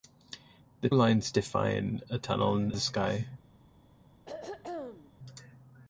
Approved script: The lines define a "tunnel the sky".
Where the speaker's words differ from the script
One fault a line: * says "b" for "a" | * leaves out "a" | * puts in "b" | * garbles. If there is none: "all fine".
all fine